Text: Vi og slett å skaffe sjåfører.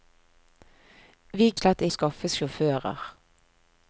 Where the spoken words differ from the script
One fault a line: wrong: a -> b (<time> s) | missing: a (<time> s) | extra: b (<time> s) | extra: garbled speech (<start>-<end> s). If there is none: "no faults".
no faults